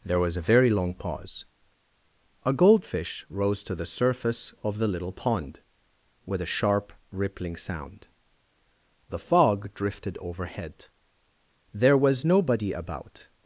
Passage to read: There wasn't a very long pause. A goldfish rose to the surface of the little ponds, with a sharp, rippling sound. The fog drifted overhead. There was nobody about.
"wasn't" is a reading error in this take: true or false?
true